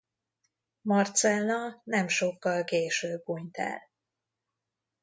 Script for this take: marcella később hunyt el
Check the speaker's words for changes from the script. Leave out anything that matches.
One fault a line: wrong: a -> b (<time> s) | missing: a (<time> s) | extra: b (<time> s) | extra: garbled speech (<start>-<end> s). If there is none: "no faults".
extra: nem sokkal (1.8 s)